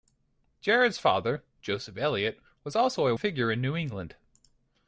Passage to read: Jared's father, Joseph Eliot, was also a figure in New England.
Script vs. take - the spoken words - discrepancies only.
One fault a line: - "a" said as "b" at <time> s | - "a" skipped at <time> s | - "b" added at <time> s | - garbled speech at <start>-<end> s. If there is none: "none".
none